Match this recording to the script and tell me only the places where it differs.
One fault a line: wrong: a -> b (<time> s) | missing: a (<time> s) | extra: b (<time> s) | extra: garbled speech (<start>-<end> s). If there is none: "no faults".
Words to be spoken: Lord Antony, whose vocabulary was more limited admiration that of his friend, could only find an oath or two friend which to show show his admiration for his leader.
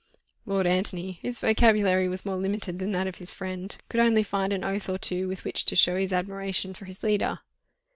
wrong: admiration -> than (2.8 s)
wrong: friend -> with (5.3 s)
missing: show (6.0 s)